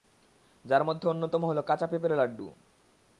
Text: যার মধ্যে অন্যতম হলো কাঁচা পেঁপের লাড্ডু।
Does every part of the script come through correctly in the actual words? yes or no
yes